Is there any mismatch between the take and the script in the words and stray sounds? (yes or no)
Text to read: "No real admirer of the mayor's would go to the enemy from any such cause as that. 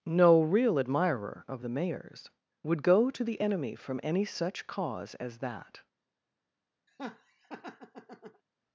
yes